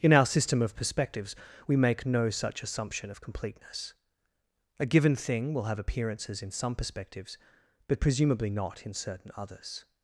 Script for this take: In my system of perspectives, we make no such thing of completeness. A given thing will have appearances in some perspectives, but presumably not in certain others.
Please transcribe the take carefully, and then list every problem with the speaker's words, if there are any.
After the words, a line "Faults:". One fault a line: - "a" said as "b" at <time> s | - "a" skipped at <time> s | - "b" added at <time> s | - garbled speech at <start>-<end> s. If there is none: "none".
In our system of perspectives, we make no such assumption of completeness. A given thing will have appearances in some perspectives, but presumably not in certain others.
Faults:
- "my" said as "our" at 0.1 s
- "thing" said as "assumption" at 2.6 s